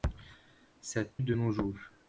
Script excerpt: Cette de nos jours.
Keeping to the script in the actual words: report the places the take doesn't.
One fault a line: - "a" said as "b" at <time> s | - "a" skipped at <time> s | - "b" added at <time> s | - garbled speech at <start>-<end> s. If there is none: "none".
none